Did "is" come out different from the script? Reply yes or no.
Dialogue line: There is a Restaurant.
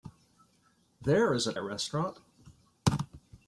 no